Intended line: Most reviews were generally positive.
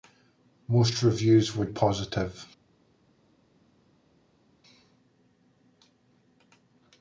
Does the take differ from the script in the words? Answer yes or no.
yes